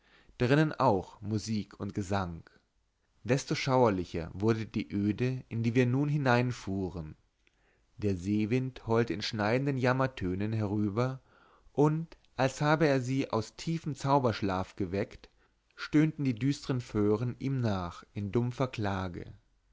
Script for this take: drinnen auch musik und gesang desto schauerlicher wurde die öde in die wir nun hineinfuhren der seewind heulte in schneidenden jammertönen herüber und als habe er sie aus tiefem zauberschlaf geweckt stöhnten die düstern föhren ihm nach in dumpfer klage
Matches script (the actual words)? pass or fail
pass